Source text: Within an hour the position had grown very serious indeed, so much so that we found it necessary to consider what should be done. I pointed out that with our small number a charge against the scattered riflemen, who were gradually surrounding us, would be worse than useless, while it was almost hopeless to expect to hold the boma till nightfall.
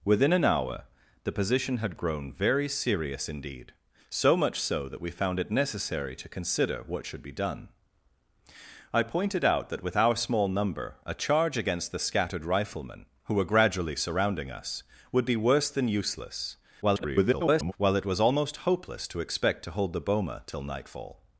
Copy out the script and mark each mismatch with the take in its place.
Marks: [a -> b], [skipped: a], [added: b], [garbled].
Within an hour the position had grown very serious indeed, so much so that we found it necessary to consider what should be done. I pointed out that with our small number a charge against the scattered riflemen, who were gradually surrounding us, would be worse than useless, [garbled] while it was almost hopeless to expect to hold the boma till nightfall.